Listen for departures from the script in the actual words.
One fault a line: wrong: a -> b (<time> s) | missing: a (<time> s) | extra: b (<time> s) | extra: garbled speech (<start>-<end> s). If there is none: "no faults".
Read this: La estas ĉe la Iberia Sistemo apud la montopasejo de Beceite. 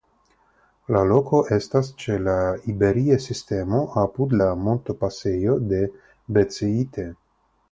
extra: loko (1.1 s)